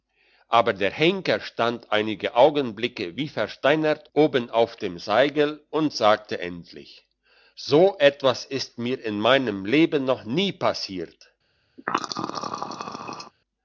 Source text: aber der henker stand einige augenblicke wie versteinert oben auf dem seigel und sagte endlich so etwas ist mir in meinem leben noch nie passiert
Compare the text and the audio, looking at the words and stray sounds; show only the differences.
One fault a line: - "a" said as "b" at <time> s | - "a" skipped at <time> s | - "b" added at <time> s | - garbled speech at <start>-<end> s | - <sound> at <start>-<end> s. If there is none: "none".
- throat clearing at 11.8-13.3 s